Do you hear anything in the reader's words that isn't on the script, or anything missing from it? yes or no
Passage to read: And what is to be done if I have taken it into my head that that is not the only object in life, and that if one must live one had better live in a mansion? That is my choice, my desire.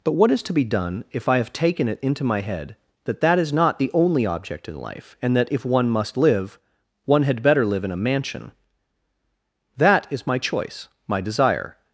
yes